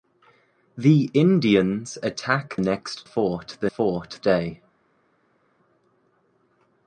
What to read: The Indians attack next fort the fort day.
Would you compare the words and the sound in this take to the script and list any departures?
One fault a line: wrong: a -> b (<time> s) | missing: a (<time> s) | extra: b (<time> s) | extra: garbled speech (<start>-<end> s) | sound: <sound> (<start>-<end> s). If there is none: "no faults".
no faults